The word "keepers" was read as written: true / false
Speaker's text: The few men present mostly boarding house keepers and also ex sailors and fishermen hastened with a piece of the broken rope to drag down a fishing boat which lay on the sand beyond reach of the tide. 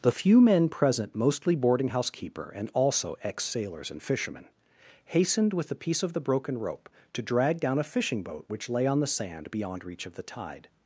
false